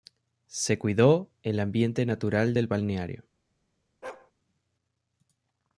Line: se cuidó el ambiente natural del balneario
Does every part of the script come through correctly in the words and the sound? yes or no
no